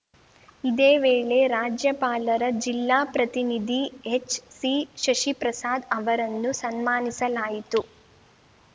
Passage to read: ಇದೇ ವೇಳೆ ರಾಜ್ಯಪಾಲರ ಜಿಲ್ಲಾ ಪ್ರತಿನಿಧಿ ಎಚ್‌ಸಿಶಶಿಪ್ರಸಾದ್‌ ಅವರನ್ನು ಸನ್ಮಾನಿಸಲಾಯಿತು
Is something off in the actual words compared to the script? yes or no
no